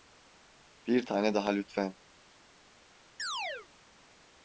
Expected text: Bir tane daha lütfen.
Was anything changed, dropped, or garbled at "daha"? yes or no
no